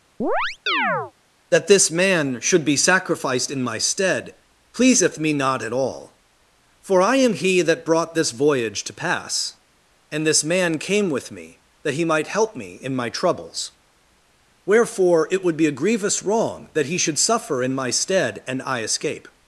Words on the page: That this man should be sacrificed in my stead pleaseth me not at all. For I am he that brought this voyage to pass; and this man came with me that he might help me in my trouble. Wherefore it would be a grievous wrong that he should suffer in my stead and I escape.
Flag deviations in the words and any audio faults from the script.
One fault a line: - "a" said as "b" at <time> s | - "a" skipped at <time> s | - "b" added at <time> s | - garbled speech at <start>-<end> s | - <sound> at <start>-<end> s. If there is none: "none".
- chirp at 0.2-1.1 s
- "trouble" said as "troubles" at 13.1 s